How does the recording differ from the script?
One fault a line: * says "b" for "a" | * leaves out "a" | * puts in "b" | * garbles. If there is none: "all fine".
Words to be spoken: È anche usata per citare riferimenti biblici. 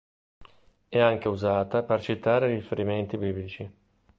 all fine